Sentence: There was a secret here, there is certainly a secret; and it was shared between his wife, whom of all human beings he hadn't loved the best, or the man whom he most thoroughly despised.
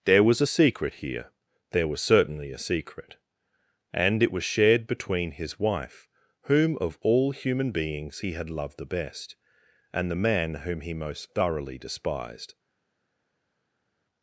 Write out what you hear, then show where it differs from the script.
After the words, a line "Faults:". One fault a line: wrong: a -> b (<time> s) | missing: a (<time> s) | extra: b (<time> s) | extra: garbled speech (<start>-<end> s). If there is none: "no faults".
There was a secret here, there was certainly a secret; and it was shared between his wife, whom of all human beings he had loved the best, and the man whom he most thoroughly despised.
Faults:
wrong: is -> was (1.9 s)
wrong: hadn't -> had (8.3 s)
wrong: or -> and (9.9 s)